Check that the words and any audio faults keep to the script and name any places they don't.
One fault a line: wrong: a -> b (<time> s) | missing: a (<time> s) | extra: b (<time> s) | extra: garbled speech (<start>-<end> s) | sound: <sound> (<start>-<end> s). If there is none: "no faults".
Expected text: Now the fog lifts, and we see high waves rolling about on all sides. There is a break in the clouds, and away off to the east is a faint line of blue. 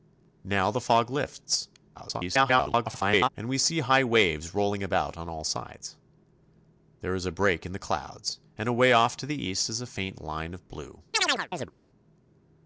extra: garbled speech (1.9-3.3 s)
sound: chirp (11.1-11.7 s)